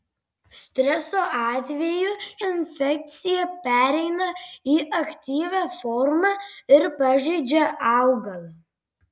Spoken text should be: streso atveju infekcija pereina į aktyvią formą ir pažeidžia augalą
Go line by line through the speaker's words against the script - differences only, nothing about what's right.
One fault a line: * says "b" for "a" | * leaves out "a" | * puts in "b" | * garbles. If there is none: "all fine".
all fine